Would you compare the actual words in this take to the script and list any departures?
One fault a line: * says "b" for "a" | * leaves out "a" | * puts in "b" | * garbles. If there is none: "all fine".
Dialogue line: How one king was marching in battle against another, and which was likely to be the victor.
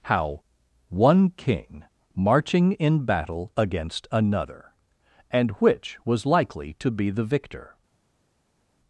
* leaves out "was"